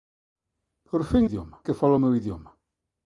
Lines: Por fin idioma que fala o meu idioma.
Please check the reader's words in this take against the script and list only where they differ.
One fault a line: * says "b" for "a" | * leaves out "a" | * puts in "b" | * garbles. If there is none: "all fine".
all fine